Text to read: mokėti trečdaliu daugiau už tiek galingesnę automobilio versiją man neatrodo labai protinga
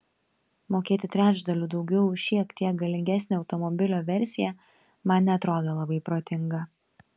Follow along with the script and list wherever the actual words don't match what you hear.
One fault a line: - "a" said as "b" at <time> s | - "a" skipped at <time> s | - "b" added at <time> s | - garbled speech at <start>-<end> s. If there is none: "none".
- "šiek" added at 2.3 s